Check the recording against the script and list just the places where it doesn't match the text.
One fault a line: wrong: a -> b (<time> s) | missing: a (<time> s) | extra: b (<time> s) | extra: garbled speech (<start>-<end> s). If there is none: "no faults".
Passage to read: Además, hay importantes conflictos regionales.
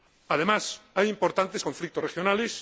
no faults